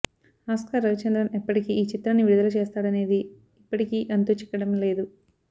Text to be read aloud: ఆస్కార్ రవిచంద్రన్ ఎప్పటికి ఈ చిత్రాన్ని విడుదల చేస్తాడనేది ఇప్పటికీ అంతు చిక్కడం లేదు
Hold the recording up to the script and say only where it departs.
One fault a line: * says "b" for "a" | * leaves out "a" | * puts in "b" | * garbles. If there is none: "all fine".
all fine